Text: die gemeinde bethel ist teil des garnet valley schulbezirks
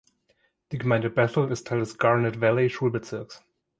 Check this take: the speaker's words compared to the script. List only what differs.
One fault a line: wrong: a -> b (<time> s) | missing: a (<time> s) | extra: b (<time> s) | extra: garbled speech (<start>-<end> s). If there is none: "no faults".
no faults